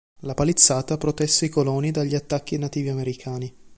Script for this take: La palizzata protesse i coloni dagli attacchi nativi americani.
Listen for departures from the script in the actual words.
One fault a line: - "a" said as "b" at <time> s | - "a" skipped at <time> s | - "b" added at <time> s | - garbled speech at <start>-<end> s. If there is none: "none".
none